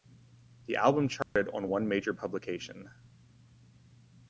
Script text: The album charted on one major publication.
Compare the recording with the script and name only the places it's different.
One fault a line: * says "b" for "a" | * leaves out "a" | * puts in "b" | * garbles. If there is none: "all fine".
all fine